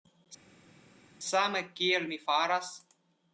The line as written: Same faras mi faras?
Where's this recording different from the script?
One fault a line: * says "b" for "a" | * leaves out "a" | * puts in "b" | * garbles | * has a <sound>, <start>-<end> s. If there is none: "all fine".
* says "kiel" for "faras"